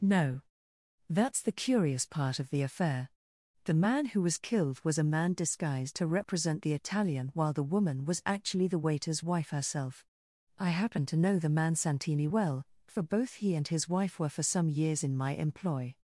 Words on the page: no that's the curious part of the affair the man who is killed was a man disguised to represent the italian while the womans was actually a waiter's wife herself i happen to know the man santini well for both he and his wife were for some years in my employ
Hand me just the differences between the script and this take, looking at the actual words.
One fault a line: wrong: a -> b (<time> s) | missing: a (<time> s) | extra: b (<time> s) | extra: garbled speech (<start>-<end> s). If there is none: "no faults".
wrong: is -> was (4.2 s)
wrong: womans -> woman (7.7 s)
wrong: a -> the (8.7 s)